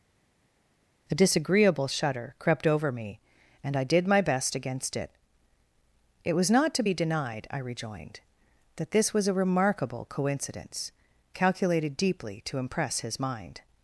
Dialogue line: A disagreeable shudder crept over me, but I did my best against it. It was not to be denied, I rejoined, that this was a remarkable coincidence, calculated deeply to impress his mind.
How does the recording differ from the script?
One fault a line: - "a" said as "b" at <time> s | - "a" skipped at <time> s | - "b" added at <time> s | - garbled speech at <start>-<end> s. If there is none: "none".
- "but" said as "and" at 3.6 s